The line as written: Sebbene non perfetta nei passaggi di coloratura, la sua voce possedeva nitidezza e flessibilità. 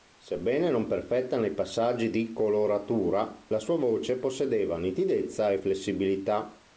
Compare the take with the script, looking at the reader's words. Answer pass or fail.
pass